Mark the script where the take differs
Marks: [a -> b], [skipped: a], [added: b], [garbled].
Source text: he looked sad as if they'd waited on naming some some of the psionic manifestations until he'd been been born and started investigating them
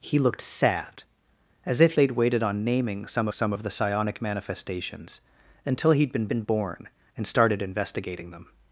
he looked sad as if they'd waited on naming some some of the psionic manifestations until he'd been been born and started investigating them